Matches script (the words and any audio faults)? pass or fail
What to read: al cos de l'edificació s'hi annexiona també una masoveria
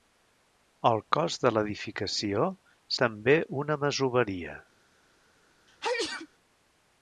fail